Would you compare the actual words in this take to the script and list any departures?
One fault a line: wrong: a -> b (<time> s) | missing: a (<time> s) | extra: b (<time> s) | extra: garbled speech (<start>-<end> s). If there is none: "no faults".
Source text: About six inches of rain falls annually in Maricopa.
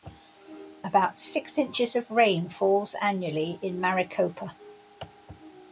no faults